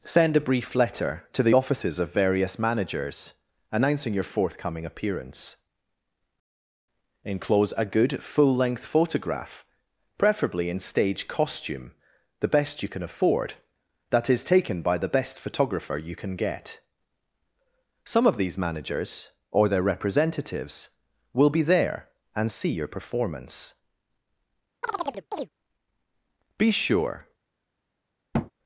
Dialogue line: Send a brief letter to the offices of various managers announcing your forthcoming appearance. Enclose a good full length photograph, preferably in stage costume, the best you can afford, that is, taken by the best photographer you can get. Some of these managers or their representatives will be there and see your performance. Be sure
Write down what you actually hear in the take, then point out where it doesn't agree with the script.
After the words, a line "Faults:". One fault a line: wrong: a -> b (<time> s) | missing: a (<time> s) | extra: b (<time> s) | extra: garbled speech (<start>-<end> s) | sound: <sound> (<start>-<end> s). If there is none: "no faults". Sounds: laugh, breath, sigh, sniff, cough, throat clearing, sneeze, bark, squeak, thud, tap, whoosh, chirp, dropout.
Send a brief letter to the offices of various managers announcing your forthcoming appearance. Enclose a good full length photograph, preferably in stage costume, the best you can afford, that is, taken by the best photographer you can get. Some of these managers or their representatives will be there and see your performance. Be sure
Faults:
sound: chirp (24.8-25.5 s)
sound: thud (28.3-28.5 s)